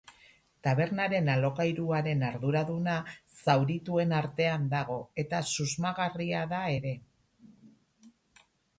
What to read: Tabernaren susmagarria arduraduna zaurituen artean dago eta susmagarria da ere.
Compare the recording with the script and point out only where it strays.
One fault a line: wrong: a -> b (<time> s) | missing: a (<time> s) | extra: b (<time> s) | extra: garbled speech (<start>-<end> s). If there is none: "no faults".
wrong: susmagarria -> alokairuaren (1.3 s)